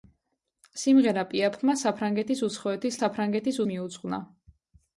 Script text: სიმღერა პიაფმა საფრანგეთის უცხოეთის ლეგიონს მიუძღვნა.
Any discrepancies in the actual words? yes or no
yes